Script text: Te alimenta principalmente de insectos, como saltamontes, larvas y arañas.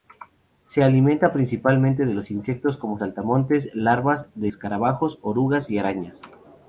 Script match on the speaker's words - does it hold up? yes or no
no